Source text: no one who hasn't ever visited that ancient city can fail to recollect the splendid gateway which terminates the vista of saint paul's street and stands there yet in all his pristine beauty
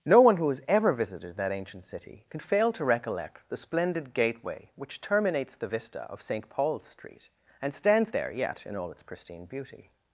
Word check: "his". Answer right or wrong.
wrong